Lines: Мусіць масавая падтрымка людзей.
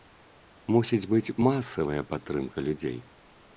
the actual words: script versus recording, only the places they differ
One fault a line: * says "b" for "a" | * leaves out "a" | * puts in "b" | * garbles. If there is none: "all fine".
* puts in "быць"